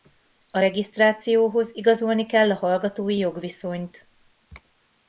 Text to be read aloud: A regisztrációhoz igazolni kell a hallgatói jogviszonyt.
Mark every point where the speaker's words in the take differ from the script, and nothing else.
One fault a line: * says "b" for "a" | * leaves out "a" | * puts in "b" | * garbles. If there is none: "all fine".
all fine